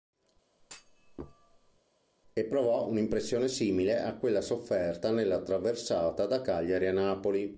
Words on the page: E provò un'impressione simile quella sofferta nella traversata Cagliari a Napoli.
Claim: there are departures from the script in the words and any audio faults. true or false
true